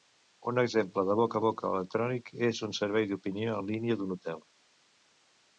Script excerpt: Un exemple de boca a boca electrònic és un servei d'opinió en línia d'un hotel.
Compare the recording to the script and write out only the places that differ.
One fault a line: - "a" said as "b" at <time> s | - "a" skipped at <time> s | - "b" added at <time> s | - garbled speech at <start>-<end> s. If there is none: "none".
none